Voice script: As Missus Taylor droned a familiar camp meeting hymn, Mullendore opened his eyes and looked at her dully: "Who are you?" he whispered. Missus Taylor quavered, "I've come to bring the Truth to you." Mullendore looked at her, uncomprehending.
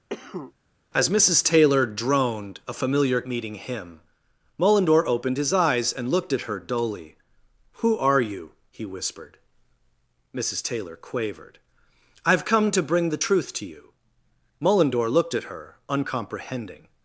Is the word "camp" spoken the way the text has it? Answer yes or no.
no